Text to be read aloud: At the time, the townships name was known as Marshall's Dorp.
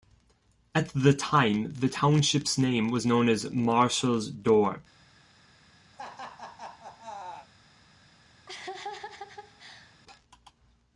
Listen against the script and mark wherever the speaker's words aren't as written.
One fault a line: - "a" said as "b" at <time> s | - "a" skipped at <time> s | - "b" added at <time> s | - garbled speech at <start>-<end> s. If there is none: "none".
none